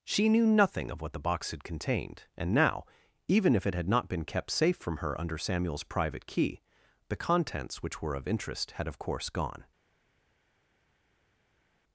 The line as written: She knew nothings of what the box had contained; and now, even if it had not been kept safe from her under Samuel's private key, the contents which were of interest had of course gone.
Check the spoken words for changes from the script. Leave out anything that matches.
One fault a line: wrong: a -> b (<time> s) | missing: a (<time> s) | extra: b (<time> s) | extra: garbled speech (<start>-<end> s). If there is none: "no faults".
wrong: nothings -> nothing (0.5 s)